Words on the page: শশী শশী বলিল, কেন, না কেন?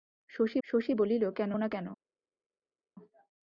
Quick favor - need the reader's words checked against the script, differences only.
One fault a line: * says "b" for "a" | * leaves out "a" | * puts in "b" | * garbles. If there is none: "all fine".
all fine